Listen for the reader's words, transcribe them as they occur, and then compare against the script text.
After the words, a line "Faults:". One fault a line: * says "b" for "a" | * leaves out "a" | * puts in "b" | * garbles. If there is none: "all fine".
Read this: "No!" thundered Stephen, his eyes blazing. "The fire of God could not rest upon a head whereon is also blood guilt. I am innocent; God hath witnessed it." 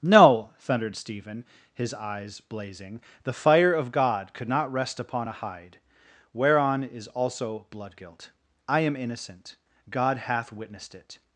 "No!" thundered Stephen, his eyes blazing. "The fire of God could not rest upon a hide whereon is also blood guilt. I am innocent; God hath witnessed it."
Faults:
* says "hide" for "head"